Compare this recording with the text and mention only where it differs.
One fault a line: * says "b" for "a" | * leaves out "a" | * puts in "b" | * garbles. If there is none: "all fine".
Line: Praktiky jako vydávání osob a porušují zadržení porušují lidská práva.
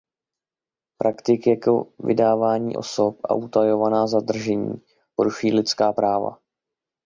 * says "utajovaná" for "porušují"